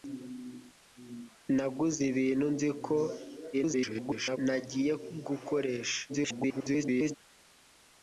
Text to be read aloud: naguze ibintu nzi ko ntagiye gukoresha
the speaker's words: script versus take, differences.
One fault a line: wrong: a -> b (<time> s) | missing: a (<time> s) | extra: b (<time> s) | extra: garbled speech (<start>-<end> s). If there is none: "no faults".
extra: garbled speech (3.5-4.4 s)
extra: garbled speech (6.1-7.2 s)